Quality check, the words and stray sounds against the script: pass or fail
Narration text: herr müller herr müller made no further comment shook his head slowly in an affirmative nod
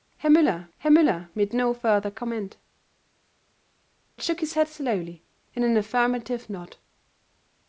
pass